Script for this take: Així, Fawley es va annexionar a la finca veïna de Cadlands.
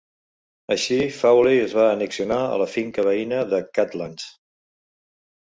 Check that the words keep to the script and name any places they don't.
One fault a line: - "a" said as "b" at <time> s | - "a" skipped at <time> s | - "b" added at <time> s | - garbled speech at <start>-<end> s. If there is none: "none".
none